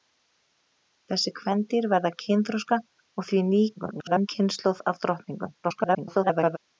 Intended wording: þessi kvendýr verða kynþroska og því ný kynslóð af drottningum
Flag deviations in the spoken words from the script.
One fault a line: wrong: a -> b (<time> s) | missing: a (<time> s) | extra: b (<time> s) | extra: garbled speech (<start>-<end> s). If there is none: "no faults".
extra: garbled speech (3.8-4.3 s)
extra: garbled speech (5.6-6.6 s)